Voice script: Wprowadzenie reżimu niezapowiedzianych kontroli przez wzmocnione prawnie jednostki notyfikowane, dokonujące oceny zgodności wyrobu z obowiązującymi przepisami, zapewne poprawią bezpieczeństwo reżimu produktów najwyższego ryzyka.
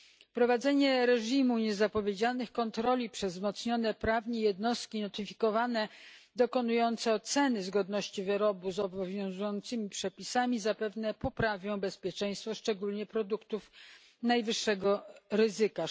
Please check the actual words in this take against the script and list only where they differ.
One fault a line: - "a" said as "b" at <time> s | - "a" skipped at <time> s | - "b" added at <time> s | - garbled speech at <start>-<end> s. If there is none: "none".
- "reżimu" said as "szczególnie" at 12.5 s